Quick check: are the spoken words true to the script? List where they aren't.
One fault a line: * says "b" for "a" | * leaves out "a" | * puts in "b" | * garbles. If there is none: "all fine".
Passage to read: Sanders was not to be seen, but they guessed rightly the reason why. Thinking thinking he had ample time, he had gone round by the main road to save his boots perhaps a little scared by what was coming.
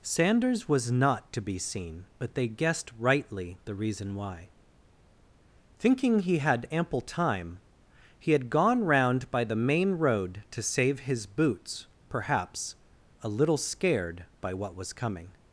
* leaves out "thinking"